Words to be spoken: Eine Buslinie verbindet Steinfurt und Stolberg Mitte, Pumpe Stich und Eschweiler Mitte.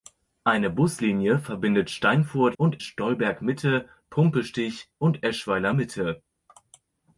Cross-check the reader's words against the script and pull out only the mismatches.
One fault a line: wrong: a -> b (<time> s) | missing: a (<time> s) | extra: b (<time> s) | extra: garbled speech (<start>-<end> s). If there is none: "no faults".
no faults